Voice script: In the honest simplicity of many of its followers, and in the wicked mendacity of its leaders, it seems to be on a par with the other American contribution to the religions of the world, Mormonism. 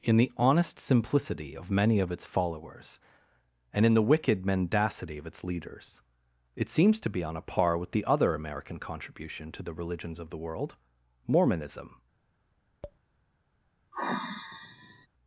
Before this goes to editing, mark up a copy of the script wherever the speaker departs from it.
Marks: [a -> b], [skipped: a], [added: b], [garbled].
In the honest simplicity of many of its followers, and in the wicked mendacity of its leaders, it seems to be on a par with the other American contribution to the religions of the world, Mormonism.